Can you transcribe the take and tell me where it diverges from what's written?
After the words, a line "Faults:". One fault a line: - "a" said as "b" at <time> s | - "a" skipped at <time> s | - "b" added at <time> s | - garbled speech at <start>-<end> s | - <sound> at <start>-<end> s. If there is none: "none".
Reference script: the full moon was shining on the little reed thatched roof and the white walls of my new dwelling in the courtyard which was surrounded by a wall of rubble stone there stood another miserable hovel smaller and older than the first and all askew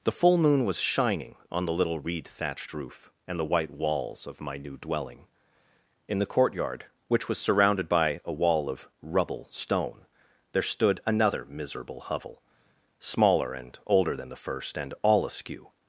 the full moon was shining on the little reed thatched roof and the white walls of my new dwelling in the courtyard which was surrounded by a wall of rubble stone there stood another miserable hovel smaller and older than the first and all askew
Faults:
none